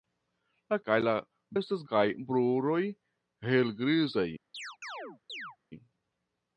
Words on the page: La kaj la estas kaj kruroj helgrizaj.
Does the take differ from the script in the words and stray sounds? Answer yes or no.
yes